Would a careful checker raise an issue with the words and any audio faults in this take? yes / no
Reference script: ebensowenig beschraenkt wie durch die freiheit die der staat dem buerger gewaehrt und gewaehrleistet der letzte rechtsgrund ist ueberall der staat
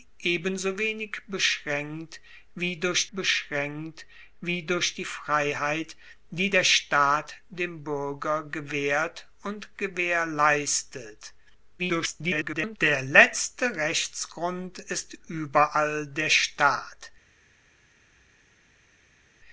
yes